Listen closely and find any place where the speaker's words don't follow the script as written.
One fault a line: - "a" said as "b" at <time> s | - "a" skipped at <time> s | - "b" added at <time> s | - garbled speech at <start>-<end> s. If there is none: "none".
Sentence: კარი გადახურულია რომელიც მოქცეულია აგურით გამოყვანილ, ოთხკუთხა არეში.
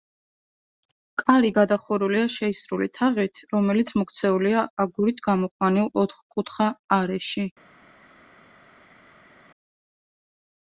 - "შეისრული თაღით" added at 2.4 s